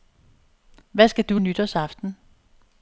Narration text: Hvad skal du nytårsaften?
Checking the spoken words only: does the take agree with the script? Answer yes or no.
yes